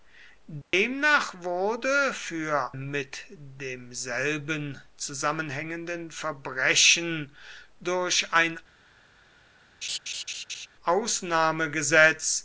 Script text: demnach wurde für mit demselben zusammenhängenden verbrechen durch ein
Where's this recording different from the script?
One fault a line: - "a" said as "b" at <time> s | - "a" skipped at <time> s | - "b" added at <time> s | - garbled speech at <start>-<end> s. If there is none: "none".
none